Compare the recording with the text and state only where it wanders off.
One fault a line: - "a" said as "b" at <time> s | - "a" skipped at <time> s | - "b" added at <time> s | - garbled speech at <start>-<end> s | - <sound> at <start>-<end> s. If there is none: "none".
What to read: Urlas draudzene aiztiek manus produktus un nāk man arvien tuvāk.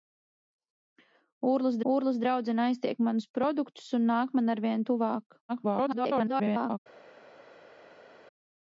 - "urlas" added at 1.9 s
- garbled speech at 5.5-6.8 s